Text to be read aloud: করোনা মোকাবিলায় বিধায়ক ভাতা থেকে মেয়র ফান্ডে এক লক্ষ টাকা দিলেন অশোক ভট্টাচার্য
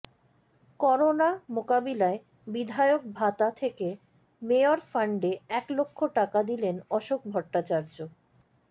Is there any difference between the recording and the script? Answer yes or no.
no